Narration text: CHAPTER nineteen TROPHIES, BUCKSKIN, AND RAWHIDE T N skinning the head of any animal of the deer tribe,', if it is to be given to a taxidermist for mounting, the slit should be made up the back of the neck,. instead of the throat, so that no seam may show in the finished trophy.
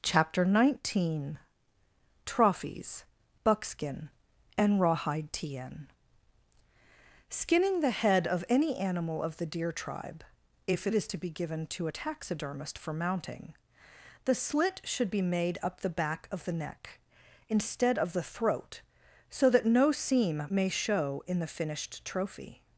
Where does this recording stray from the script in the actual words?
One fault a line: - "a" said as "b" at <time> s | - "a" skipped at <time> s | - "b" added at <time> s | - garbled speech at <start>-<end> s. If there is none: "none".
none